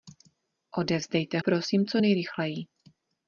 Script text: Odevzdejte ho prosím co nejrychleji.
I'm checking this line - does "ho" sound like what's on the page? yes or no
no